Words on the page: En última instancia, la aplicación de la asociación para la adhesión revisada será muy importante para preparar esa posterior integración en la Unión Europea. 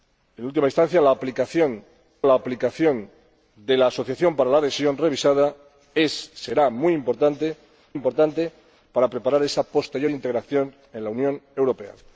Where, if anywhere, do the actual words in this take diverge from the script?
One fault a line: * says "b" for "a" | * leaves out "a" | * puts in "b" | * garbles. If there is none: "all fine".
* puts in "la aplicación"
* puts in "importante"